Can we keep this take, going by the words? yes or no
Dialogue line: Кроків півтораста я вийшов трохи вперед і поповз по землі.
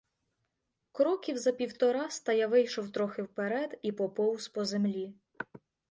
no